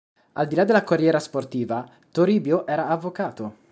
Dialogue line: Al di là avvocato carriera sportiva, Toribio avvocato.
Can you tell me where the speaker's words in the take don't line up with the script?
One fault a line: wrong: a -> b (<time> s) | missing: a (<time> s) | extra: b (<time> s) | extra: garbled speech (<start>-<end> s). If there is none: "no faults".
wrong: avvocato -> della (0.6 s)
extra: era (2.6 s)